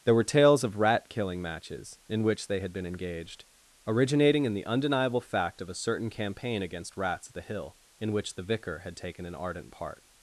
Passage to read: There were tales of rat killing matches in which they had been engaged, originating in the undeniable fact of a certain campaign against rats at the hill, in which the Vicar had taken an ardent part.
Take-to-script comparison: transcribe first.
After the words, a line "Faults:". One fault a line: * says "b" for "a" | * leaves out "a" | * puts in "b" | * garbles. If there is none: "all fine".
There were tales of rat killing matches in which they had been engaged, originating in the undeniable fact of a certain campaign against rats at the hill, in which the Vicar had taken an ardent part.
Faults:
all fine